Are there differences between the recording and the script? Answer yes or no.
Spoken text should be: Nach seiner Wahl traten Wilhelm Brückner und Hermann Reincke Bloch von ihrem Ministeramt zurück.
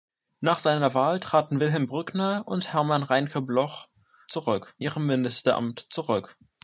yes